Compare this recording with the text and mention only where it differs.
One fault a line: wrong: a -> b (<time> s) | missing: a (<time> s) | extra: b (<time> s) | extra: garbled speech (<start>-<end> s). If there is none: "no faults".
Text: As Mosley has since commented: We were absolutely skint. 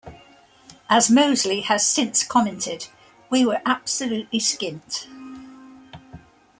no faults